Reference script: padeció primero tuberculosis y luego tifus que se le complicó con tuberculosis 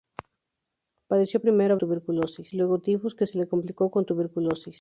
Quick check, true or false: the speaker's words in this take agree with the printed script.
true